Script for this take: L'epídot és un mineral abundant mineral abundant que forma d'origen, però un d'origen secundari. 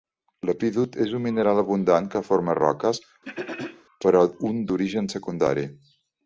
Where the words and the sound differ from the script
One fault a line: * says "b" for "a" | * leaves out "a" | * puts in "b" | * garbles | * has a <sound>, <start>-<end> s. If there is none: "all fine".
* leaves out "mineral abundant"
* says "roques" for "d'origen"
* has a throat clearing, 3.2-3.8 s